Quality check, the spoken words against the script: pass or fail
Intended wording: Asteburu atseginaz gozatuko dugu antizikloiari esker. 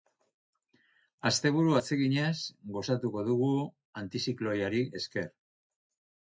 pass